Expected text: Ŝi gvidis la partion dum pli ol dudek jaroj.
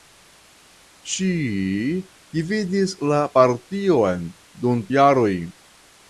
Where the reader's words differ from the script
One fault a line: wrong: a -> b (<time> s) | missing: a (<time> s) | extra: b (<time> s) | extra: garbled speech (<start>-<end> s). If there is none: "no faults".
missing: pli ol dudek (4.8 s)